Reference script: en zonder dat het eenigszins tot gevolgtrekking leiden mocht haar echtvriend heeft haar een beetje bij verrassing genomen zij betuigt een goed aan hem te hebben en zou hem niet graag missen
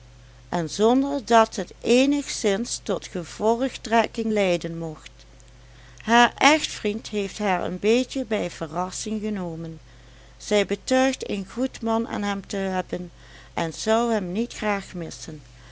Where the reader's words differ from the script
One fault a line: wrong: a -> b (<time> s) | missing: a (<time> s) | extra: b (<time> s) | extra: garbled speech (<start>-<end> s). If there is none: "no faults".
extra: man (11.8 s)